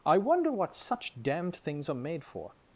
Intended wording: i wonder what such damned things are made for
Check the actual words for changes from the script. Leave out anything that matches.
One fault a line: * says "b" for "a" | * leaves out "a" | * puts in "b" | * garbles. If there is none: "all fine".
all fine